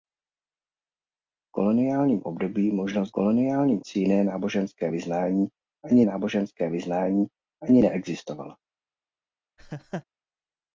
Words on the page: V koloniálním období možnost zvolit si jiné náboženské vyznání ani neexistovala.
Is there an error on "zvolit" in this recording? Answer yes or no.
yes